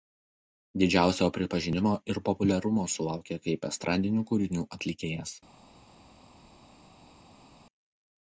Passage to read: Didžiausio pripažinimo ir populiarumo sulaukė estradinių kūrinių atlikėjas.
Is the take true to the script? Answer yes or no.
no